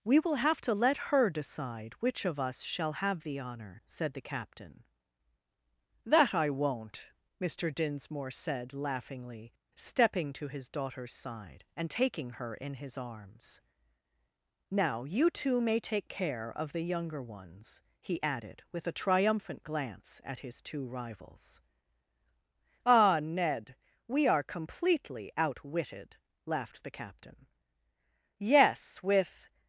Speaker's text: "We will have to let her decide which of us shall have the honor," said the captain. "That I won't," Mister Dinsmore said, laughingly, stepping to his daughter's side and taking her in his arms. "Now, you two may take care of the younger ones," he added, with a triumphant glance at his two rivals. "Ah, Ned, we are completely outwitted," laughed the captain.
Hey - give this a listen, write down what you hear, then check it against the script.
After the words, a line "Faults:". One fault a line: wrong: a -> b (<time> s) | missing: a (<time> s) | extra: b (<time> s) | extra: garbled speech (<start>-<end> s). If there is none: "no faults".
"We will have to let her decide which of us shall have the honor," said the captain. "That I won't," Mister Dinsmore said, laughingly, stepping to his daughter's side and taking her in his arms. "Now, you two may take care of the younger ones," he added, with a triumphant glance at his two rivals. "Ah, Ned, we are completely outwitted," laughed the captain. "Yes; with
Faults:
extra: Yes with (28.4 s)